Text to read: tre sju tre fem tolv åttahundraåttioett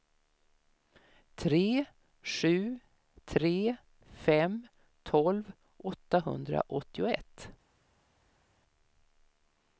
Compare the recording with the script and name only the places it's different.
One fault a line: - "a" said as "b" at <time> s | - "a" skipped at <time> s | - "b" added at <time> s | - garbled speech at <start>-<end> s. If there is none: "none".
none